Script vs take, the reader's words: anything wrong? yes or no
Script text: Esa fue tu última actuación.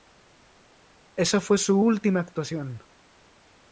yes